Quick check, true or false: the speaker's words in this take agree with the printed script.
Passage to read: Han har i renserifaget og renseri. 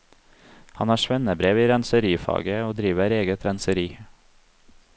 false